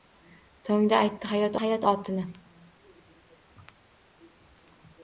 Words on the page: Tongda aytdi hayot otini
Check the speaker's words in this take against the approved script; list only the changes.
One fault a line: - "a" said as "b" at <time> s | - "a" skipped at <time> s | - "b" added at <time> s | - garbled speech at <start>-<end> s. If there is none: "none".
- "hayot" added at 1.6 s